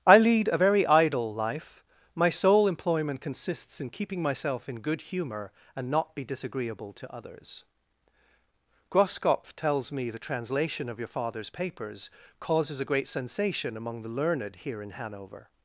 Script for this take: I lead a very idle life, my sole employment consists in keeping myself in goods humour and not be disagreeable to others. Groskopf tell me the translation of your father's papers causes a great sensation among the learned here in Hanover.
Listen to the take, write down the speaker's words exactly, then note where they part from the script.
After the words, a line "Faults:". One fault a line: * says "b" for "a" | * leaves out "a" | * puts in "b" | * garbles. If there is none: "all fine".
I lead a very idle life, my sole employment consists in keeping myself in good humour and not be disagreeable to others. Groskopf tells me the translation of your father's papers causes a great sensation among the learned here in Hanover.
Faults:
* says "good" for "goods"
* says "tells" for "tell"